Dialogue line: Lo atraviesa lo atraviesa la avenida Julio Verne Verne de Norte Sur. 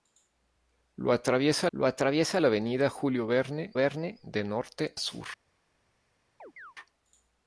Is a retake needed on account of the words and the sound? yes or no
yes